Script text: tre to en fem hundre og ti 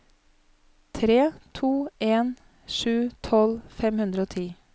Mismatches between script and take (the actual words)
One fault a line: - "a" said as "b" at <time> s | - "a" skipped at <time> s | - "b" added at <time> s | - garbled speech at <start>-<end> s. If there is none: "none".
- "sju tolv" added at 2.7 s